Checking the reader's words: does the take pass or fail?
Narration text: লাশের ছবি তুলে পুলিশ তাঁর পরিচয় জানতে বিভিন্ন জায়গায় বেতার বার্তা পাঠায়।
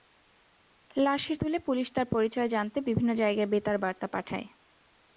fail